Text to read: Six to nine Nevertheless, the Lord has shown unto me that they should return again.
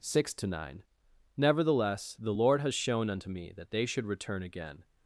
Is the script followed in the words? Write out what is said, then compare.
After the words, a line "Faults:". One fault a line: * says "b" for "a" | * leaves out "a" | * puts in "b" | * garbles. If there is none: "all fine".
Six to nine Nevertheless, the Lord has shown unto me that they should return again.
Faults:
all fine